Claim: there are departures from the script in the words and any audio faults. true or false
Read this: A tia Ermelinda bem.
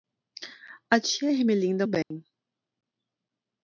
true